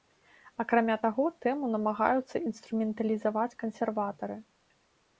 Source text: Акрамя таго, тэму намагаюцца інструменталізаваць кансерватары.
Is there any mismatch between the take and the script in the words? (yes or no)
no